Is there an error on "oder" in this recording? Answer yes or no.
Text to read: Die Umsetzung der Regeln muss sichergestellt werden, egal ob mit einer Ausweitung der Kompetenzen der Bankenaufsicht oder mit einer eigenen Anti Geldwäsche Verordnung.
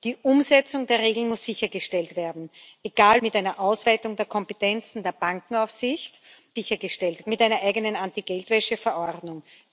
yes